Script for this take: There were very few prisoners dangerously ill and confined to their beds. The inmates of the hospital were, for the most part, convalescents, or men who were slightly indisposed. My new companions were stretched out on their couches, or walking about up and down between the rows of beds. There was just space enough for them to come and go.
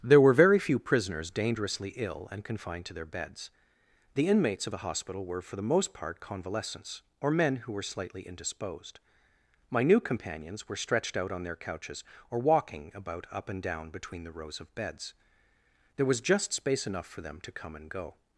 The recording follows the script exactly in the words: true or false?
true